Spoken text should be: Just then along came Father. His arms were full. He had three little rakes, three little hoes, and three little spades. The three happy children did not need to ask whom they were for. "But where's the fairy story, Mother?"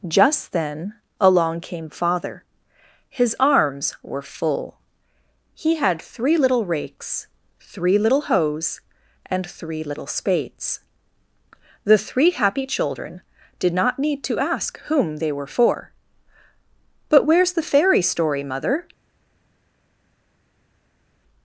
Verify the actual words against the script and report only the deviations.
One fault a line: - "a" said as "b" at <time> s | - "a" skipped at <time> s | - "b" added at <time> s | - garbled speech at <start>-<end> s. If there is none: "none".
none